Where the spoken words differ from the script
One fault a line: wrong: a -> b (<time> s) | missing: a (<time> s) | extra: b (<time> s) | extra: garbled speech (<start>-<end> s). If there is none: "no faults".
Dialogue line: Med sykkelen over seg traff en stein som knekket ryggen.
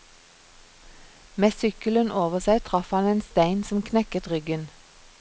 extra: han (3.0 s)